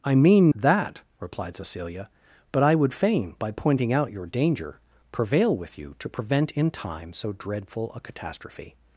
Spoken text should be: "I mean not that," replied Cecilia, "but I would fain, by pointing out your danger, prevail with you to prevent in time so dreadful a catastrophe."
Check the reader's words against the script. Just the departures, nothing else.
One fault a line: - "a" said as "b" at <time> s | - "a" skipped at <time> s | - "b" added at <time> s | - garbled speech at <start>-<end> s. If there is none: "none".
- "not" skipped at 0.5 s